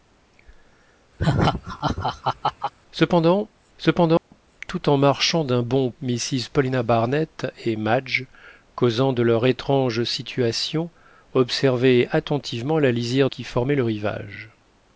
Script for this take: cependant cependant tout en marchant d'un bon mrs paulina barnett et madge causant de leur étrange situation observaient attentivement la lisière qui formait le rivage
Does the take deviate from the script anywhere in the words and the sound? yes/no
yes